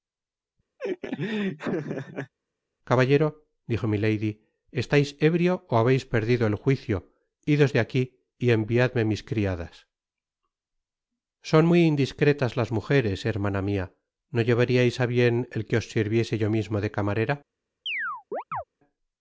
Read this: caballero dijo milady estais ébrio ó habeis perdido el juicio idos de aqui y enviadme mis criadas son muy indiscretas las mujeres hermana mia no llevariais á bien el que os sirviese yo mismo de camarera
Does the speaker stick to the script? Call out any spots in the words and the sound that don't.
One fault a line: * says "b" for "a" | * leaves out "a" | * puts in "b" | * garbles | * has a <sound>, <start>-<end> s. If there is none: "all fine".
* has a laugh, 0.8-2.3 s
* has a chirp, 17.9-18.6 s